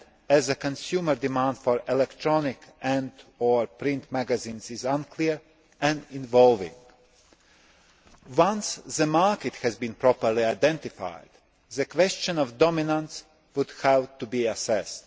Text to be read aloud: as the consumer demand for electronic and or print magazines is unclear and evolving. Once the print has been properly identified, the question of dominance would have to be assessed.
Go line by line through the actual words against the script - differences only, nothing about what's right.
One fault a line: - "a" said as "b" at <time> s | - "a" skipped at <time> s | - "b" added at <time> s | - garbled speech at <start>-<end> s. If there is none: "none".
- "print" said as "market" at 9.1 s